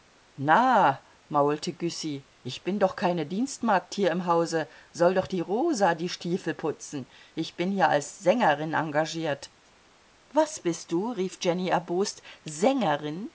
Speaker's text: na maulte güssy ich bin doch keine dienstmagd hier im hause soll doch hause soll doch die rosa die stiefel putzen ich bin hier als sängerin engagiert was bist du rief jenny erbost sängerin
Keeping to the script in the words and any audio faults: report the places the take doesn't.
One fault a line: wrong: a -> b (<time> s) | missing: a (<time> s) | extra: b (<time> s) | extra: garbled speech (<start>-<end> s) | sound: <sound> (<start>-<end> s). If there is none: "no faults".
missing: hause soll doch (5.3 s)